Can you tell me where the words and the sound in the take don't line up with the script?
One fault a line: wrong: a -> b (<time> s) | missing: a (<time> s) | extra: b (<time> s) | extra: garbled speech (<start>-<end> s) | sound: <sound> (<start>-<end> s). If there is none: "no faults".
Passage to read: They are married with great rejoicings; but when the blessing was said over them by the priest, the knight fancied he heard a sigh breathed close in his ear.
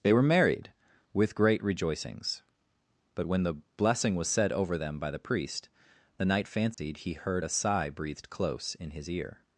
wrong: are -> were (0.1 s)
sound: dropout (6.7-6.8 s)